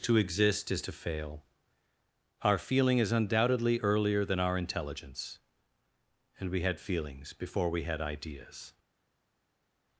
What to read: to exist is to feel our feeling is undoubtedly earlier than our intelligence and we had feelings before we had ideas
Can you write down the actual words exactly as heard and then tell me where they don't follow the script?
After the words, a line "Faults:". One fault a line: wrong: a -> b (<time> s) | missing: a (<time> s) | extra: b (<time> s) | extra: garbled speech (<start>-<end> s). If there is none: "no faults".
to exist is to fail our feeling is undoubtedly earlier than our intelligence and we had feelings before we had ideas
Faults:
wrong: feel -> fail (0.9 s)